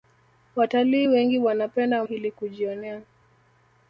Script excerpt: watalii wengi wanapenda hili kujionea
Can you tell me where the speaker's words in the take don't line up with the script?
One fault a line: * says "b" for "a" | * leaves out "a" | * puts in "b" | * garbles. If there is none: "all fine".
all fine